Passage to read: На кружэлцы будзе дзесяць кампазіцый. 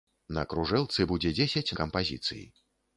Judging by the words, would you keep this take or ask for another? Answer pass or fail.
pass